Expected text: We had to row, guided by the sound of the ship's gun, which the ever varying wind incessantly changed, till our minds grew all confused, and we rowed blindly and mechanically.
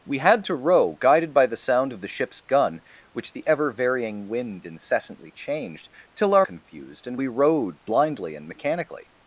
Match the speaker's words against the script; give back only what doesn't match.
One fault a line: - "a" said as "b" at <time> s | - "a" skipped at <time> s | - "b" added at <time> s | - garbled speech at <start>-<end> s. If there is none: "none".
- "minds grew all" skipped at 6.5 s